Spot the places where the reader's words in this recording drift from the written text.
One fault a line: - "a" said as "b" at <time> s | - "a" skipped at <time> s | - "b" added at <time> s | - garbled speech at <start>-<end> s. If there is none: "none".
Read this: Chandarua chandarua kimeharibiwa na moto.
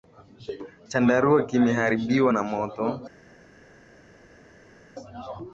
- "chandarua" skipped at 1.4 s